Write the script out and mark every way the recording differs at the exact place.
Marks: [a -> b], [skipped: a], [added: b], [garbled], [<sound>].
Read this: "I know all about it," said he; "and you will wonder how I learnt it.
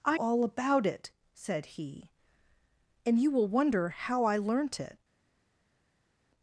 "I [skipped: know] all about it," said he; "and you will wonder how I learnt it.